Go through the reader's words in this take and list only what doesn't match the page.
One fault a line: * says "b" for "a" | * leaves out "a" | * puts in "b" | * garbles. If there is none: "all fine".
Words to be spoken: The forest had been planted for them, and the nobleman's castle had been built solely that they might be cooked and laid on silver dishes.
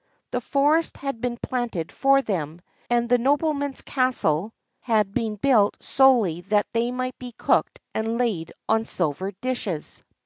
all fine